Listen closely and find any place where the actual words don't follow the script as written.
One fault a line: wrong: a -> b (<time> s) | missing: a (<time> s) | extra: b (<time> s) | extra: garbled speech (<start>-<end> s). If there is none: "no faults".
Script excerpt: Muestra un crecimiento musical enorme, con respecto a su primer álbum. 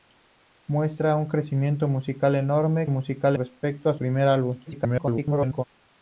wrong: con -> musical (2.9 s)
missing: su (3.9 s)
extra: garbled speech (4.7-5.6 s)